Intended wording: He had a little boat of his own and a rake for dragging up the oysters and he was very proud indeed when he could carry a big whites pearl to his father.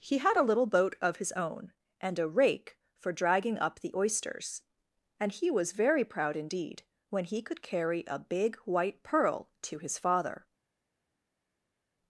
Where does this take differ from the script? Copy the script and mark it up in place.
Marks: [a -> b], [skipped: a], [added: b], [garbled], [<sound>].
He had a little boat of his own and a rake for dragging up the oysters and he was very proud indeed when he could carry a big [whites -> white] pearl to his father.